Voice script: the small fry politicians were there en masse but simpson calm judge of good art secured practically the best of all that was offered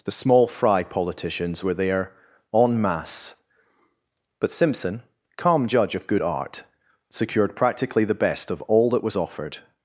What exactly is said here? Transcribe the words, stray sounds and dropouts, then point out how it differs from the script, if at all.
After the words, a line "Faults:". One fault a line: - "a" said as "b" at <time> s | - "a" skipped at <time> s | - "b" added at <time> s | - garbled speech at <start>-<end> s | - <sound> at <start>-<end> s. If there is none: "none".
the small fry politicians were there en masse but simpson calm judge of good art secured practically the best of all that was offered
Faults:
none